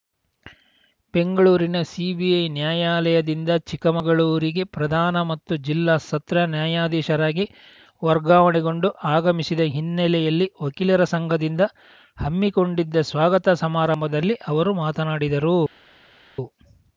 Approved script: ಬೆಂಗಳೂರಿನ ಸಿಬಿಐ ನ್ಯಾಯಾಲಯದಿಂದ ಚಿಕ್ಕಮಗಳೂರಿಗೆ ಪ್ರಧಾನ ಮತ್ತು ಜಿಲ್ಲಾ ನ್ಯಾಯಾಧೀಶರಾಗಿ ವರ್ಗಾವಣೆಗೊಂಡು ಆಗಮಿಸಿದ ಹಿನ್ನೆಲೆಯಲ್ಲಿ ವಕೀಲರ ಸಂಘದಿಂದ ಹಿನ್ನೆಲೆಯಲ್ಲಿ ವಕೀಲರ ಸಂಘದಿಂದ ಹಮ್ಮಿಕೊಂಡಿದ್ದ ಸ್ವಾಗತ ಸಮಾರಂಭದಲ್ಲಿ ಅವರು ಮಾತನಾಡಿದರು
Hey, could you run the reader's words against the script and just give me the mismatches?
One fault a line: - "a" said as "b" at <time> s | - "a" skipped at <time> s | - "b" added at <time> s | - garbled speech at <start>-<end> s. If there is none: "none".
- "ಸತ್ರ" added at 6.0 s
- "ಹಿನ್ನೆಲೆಯಲ್ಲಿ ವಕೀಲರ ಸಂಘದಿಂದ" skipped at 11.6 s